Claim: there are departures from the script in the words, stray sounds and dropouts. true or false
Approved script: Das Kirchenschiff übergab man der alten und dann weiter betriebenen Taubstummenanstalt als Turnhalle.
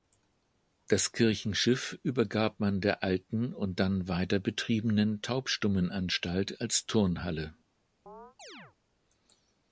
true